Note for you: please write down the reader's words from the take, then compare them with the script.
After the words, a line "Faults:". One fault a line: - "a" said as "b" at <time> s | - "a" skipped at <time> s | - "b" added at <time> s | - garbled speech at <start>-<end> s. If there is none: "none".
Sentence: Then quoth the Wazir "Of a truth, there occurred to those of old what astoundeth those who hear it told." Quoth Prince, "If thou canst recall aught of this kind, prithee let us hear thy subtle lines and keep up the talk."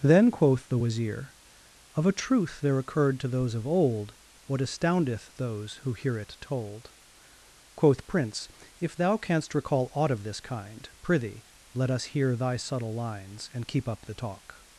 Then quoth the Wazir "Of a truth, there occurred to those of old what astoundeth those who hear it told." Quoth Prince, "If thou canst recall aught of this kind, prithee let us hear thy subtle lines and keep up the talk."
Faults:
none